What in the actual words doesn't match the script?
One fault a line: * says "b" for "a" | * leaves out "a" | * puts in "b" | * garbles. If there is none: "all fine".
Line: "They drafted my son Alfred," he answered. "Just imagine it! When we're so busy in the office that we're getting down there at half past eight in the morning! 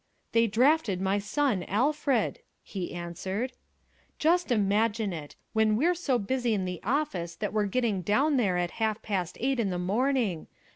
all fine